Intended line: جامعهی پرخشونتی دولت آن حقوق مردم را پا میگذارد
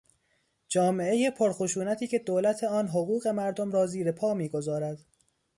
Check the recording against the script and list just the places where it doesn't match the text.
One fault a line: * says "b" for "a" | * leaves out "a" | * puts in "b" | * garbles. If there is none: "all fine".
* puts in "که"
* puts in "زیر"